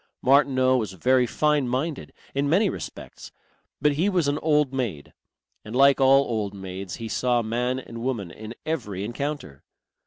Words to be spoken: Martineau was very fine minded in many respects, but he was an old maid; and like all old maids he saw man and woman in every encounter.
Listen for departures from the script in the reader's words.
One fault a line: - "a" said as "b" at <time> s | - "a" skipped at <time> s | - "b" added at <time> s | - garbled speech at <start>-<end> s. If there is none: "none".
none